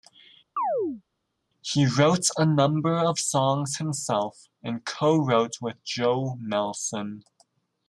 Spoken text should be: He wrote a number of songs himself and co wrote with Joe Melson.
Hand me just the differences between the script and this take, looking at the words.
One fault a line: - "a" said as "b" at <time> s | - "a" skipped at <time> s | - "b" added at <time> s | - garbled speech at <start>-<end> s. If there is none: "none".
none